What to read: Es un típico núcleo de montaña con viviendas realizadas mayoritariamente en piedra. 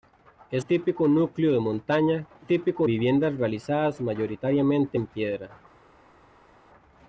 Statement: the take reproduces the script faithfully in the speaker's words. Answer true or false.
false